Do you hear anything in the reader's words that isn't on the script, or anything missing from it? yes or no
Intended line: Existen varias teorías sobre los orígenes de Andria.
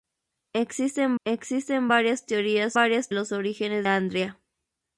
yes